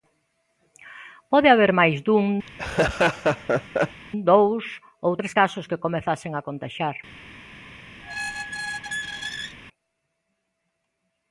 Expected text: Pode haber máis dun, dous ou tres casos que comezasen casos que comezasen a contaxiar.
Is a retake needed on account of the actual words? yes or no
yes